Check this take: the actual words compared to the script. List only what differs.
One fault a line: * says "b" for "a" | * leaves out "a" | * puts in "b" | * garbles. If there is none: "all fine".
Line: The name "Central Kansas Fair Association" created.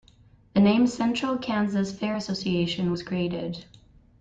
* puts in "was"